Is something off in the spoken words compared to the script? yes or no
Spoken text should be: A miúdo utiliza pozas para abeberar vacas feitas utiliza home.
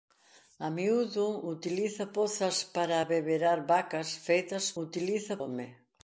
no